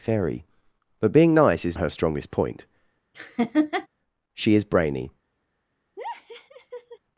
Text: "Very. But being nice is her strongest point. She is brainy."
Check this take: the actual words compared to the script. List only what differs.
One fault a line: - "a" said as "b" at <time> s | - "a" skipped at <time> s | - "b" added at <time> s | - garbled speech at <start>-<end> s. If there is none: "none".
none